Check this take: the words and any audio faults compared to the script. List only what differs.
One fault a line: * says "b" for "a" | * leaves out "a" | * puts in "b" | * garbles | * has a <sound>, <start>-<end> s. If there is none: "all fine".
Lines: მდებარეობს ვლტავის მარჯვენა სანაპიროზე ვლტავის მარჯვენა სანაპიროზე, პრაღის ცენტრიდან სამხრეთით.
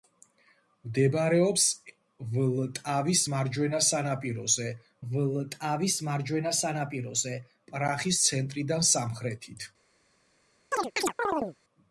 * has a chirp, 10.7-11.6 s